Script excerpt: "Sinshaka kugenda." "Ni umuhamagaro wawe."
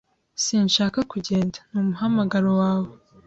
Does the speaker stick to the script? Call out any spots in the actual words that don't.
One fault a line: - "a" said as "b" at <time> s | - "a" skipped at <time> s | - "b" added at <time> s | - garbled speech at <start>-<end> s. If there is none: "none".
none